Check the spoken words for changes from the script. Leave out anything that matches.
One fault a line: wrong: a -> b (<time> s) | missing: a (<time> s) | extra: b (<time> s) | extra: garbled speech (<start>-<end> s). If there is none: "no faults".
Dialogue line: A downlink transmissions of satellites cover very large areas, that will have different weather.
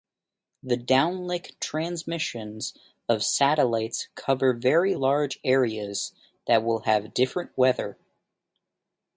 wrong: A -> The (0.6 s)